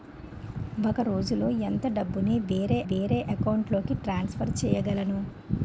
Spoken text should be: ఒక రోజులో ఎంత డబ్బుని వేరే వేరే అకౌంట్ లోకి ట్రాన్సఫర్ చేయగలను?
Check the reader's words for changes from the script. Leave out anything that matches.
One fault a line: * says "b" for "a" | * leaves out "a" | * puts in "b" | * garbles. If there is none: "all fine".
all fine